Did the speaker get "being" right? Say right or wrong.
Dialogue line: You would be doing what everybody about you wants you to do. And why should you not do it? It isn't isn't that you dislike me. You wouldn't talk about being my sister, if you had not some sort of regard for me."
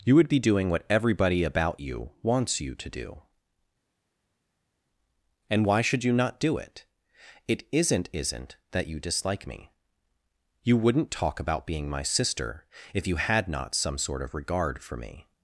right